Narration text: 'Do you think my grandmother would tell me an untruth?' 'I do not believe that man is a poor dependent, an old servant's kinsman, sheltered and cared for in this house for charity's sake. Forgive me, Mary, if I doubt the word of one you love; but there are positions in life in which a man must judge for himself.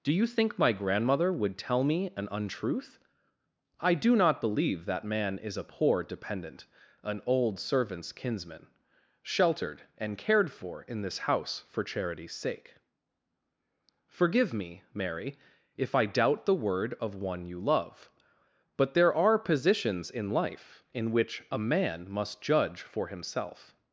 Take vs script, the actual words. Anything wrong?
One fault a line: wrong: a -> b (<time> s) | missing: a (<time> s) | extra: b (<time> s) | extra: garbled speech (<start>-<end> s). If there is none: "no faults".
no faults